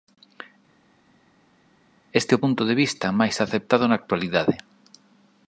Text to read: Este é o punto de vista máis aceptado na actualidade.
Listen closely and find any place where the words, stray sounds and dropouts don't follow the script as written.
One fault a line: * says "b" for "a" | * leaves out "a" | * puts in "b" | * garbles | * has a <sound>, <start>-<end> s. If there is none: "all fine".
all fine